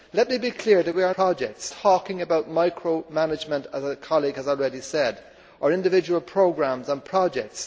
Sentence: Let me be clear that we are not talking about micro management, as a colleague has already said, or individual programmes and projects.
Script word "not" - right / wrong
wrong